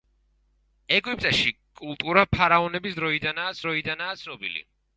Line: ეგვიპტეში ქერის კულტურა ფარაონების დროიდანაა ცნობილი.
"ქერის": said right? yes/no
no